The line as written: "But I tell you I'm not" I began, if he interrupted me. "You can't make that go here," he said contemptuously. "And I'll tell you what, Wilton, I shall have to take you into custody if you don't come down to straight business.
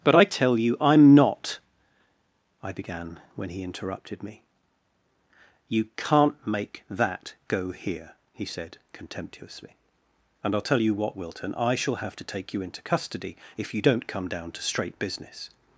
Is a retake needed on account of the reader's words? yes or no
yes